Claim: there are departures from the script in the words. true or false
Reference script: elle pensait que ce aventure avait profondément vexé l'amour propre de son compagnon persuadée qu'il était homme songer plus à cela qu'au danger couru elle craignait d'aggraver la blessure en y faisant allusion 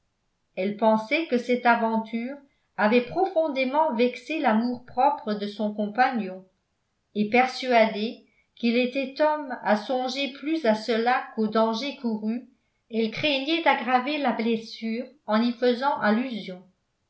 true